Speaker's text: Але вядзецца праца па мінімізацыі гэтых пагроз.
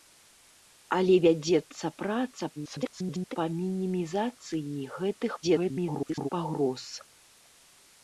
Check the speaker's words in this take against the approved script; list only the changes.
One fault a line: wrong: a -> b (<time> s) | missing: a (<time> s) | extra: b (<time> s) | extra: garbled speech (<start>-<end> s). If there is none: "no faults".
extra: garbled speech (2.6-3.4 s)
extra: garbled speech (5.4-6.3 s)